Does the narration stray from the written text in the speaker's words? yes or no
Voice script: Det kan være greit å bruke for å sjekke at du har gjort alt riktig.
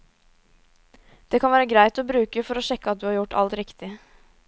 no